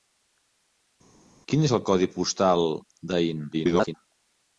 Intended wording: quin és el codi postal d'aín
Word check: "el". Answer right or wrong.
right